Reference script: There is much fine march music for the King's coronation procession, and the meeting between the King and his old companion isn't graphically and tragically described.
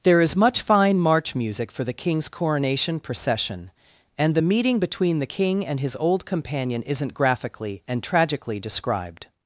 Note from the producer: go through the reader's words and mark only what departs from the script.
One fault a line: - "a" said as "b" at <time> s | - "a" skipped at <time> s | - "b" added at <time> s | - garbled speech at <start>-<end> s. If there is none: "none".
none